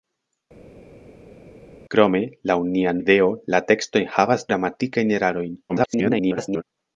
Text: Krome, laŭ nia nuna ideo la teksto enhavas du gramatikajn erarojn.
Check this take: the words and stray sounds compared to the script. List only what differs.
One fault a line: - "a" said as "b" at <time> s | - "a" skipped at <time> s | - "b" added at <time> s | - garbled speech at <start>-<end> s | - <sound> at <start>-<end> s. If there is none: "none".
- "nuna" skipped at 2.9 s
- "du" skipped at 4.5 s
- garbled speech at 5.7-6.6 s